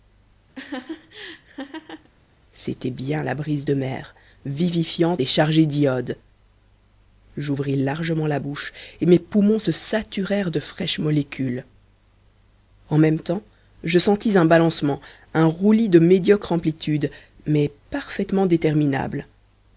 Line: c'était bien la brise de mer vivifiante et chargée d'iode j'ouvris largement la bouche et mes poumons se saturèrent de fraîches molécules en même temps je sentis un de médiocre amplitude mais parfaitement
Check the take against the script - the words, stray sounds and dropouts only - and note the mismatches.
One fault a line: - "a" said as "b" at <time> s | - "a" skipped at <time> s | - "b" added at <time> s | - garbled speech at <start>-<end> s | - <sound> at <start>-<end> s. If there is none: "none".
- laugh at 0.5-2.1 s
- "balancement un roulis" added at 14.4 s